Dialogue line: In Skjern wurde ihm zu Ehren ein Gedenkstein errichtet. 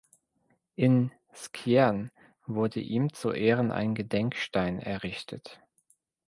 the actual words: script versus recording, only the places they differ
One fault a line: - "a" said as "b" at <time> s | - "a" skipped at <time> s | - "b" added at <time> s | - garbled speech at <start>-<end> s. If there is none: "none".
none